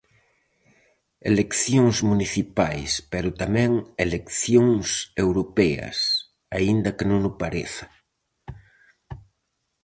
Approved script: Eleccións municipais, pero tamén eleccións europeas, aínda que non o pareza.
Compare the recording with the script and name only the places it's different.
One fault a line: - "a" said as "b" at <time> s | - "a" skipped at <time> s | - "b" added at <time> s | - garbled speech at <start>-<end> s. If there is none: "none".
none